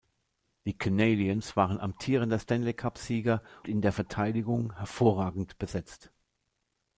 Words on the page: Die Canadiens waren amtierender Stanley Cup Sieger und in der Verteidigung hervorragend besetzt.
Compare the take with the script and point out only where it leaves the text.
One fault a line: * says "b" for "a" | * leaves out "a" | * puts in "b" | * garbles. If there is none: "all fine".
* leaves out "und"